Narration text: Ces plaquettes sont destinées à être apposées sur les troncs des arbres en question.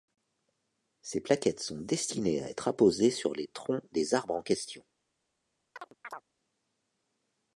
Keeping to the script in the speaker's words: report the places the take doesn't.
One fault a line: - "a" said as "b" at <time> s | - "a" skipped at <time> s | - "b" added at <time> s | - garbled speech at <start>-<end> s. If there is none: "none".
none